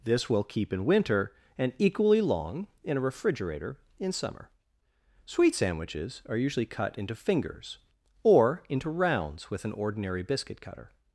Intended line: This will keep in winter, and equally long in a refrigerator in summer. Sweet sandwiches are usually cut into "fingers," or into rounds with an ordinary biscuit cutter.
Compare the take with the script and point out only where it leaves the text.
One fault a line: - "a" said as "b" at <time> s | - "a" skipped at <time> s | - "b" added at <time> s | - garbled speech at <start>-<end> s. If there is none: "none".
none